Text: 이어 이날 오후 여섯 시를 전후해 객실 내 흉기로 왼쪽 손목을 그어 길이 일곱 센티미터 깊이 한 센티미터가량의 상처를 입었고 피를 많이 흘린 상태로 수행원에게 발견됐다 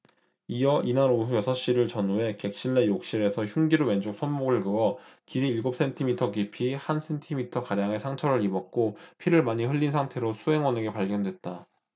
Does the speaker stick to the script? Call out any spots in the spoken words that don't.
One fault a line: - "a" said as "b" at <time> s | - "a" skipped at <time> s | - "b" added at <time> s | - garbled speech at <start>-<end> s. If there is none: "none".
- "욕실에서" added at 2.9 s